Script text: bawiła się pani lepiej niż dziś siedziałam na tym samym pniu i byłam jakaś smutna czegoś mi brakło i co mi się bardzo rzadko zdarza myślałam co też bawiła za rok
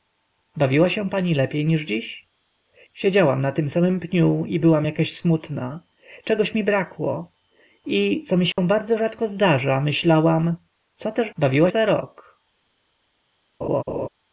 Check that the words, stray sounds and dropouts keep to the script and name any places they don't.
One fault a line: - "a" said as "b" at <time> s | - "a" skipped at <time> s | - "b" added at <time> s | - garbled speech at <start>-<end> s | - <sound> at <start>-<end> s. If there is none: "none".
- dropout at 8.5-8.6 s
- laugh at 13.6-14.1 s